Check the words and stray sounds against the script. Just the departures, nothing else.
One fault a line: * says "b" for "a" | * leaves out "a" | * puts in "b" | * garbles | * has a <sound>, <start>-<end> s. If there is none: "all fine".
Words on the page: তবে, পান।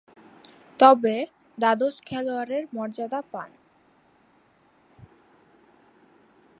* puts in "দ্বাদশ খেলোয়াড়ের মর্যাদা"